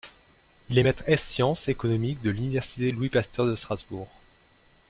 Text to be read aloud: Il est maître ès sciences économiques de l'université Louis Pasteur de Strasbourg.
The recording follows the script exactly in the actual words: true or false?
true